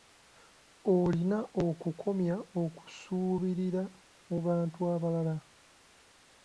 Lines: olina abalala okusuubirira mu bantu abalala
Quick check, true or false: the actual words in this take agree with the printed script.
false